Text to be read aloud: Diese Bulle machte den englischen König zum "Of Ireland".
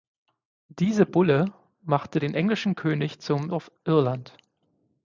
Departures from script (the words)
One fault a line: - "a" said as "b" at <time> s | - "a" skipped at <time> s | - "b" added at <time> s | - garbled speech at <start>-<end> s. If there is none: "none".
none